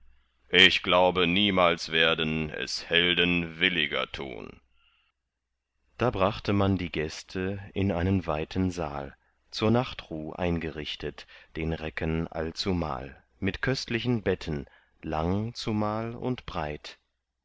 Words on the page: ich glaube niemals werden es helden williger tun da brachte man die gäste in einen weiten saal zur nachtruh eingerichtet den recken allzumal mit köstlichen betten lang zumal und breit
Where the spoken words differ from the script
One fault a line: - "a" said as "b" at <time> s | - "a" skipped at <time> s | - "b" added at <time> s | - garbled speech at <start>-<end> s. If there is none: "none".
none